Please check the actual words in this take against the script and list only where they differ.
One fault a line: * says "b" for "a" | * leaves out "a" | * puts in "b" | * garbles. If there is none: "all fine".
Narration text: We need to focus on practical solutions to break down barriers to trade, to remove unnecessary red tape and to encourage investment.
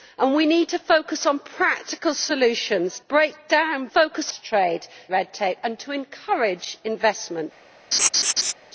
* leaves out "to"
* says "focus" for "barriers"
* leaves out "to remove unnecessary"